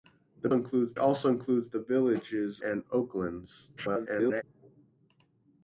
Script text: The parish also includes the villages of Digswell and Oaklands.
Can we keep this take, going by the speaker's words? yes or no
no